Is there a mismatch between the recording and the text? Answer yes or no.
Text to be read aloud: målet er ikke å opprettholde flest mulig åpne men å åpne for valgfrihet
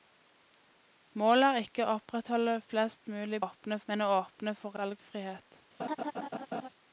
no